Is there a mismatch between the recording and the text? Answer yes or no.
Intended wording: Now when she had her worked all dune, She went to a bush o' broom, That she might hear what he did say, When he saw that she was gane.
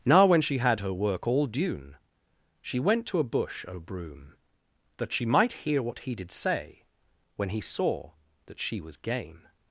yes